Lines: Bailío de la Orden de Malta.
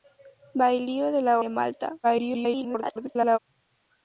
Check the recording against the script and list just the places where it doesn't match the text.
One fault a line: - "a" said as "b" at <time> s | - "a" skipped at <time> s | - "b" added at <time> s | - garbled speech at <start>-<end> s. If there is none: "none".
- "Orden" skipped at 1.4 s
- garbled speech at 2.0-3.4 s